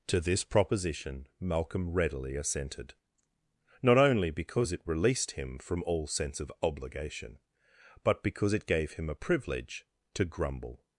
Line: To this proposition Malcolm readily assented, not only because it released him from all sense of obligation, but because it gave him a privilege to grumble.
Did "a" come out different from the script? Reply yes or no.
no